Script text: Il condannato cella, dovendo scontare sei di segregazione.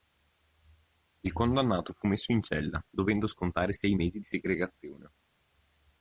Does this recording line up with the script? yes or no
no